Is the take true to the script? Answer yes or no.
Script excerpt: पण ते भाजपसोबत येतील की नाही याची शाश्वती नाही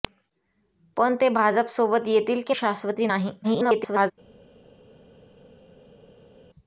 no